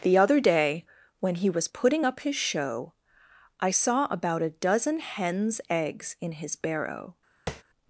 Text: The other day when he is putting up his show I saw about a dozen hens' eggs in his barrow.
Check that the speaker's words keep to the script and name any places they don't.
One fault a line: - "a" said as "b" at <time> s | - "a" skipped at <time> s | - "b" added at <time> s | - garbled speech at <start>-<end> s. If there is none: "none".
- "is" said as "was" at 1.5 s